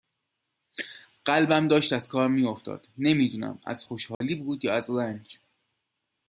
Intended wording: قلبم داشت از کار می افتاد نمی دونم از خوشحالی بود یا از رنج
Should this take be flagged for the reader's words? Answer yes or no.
no